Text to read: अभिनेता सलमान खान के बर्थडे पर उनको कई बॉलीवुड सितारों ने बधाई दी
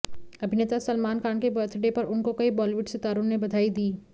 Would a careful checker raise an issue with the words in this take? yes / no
no